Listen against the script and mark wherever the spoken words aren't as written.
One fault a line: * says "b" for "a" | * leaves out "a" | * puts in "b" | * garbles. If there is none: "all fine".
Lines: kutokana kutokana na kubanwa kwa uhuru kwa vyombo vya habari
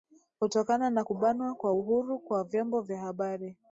* leaves out "kutokana"